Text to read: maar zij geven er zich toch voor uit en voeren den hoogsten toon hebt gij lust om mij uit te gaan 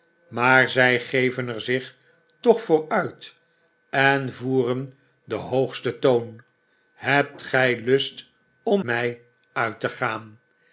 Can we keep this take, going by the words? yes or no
yes